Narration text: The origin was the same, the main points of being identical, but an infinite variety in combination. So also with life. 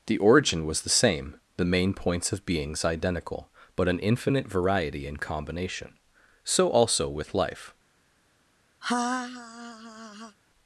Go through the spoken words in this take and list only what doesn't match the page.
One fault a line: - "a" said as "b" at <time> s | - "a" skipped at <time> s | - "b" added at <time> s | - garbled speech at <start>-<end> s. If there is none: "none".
- "being" said as "beings" at 2.5 s